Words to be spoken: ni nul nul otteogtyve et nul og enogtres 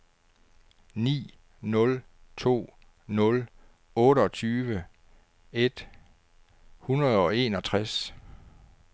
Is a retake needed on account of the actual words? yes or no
yes